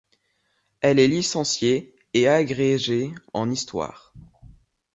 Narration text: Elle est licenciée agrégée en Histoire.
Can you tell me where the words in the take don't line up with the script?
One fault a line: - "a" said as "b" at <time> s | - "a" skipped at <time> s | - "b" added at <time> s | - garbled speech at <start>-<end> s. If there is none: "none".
- "et" added at 2.1 s